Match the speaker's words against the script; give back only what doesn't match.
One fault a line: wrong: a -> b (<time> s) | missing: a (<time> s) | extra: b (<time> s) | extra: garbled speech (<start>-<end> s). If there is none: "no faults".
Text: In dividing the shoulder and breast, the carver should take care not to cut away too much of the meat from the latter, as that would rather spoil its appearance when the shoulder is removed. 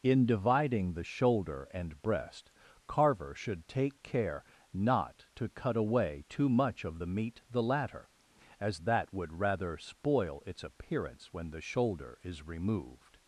missing: the (2.5 s)
missing: from (7.4 s)